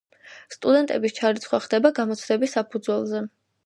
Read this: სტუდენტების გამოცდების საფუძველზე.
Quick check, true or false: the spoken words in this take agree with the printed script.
false